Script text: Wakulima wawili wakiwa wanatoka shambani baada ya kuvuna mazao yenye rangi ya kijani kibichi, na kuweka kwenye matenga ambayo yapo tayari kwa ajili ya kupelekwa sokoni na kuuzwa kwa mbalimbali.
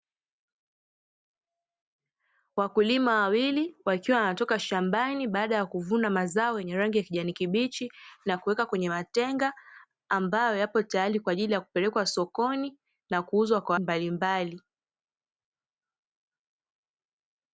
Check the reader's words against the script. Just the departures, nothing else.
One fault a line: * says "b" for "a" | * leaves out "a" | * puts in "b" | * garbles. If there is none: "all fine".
all fine